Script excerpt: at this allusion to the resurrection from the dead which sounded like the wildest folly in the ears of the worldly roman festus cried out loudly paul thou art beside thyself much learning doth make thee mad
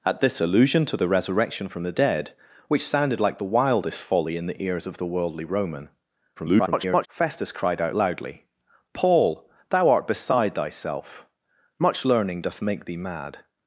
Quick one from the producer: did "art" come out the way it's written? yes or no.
yes